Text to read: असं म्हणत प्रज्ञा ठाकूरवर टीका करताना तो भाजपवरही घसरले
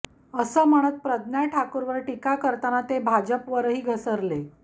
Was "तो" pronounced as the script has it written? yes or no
no